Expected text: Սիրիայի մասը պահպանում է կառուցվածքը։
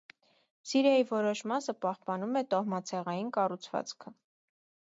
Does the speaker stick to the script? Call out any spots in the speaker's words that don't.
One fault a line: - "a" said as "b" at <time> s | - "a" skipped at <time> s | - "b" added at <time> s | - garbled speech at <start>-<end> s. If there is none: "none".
- "որոշ" added at 1.1 s
- "տոհմացեղային" added at 2.6 s